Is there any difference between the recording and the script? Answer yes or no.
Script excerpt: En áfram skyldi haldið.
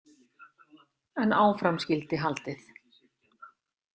no